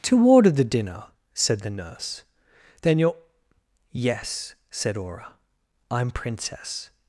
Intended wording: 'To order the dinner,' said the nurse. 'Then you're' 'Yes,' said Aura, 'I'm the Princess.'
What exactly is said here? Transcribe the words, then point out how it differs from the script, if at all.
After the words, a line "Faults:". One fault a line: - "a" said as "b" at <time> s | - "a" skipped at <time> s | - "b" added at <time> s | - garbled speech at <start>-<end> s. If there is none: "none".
'To order the dinner,' said the nurse. 'Then you're' 'Yes,' said Aura, 'I'm Princess.'
Faults:
- "the" skipped at 6.1 s